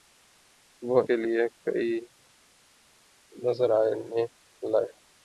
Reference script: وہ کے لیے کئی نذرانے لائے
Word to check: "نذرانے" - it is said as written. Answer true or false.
true